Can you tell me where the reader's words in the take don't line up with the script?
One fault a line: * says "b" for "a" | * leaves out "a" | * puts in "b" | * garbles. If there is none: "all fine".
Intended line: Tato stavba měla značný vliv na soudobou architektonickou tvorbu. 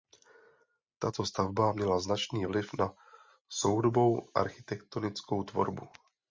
all fine